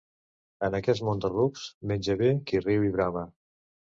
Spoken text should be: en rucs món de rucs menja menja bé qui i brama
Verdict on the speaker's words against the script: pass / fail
fail